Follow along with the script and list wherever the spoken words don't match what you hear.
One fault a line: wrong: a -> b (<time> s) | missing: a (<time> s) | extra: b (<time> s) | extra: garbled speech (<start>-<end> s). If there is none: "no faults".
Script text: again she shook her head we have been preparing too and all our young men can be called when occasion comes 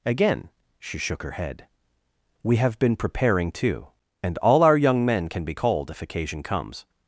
wrong: when -> if (5.9 s)